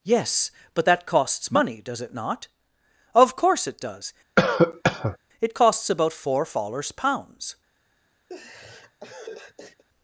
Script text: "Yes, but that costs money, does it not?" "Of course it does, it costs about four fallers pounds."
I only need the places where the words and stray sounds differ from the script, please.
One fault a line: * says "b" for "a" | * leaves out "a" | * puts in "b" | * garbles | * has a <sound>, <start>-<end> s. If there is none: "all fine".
* has a cough, 4.4-5.2 s
* has a laugh, 8.3-9.8 s